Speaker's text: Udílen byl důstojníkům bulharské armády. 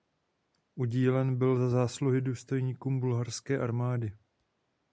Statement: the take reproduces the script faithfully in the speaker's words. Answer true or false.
false